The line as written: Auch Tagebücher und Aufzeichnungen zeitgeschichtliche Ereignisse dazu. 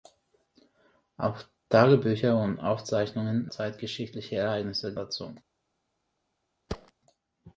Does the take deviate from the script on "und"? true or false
false